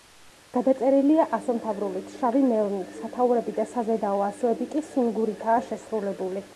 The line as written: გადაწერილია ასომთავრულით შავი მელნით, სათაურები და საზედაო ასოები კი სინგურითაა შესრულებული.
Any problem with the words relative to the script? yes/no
no